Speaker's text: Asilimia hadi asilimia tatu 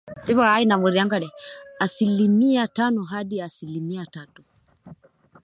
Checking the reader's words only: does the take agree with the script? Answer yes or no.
no